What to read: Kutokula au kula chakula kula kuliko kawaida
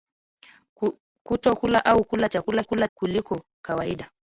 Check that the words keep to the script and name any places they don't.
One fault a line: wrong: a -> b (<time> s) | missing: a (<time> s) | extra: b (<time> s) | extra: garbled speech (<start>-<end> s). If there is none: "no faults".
no faults